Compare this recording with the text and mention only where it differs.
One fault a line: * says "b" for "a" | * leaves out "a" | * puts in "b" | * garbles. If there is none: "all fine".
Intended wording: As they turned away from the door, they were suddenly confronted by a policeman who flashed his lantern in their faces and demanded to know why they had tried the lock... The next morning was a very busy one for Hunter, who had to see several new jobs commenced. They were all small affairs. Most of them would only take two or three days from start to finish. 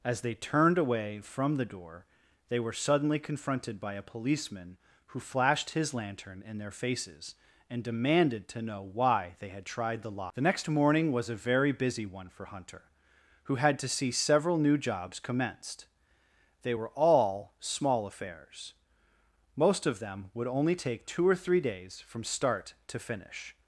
all fine